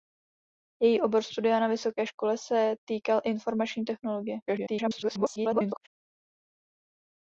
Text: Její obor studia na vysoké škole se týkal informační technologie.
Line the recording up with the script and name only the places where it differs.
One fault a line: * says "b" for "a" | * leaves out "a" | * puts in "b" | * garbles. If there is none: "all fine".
* garbles